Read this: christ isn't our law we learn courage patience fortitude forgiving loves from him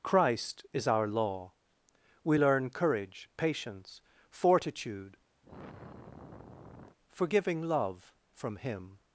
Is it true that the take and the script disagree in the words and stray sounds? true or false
true